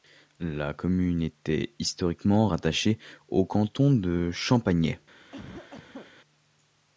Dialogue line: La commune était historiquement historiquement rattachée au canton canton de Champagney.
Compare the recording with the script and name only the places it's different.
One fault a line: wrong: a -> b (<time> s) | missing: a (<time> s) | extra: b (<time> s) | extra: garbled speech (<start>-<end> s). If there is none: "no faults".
missing: historiquement (2.5 s)
missing: canton (3.9 s)